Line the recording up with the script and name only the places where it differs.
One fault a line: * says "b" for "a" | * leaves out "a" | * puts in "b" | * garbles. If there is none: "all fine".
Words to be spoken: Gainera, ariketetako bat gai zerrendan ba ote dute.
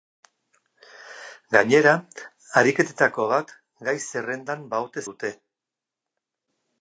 all fine